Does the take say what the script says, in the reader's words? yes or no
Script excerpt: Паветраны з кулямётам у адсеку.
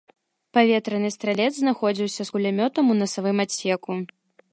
no